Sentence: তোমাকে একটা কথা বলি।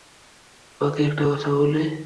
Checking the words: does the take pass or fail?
pass